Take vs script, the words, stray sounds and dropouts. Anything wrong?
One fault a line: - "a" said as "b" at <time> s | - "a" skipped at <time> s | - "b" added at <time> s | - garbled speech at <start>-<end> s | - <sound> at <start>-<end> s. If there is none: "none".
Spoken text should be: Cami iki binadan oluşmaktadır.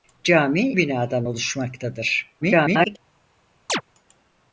- "iki" skipped at 0.7 s
- garbled speech at 2.4-3.0 s
- chirp at 3.7-3.8 s